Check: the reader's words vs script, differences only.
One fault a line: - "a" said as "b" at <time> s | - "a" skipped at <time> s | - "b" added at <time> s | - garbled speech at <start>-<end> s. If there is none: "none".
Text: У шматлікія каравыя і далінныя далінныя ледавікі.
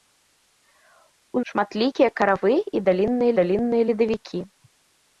none